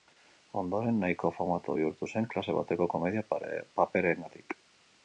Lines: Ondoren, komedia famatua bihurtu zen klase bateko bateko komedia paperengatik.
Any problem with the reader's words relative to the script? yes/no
yes